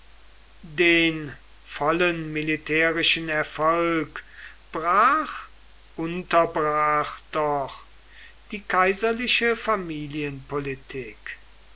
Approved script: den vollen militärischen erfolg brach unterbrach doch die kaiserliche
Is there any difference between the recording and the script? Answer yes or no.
no